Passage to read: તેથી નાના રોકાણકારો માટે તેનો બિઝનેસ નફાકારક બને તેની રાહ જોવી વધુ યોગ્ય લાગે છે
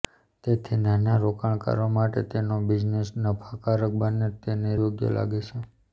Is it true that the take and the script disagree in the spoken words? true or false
true